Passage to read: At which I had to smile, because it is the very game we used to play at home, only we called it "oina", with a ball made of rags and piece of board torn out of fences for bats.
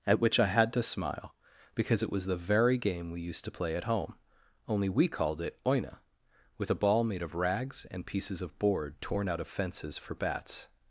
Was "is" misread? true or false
true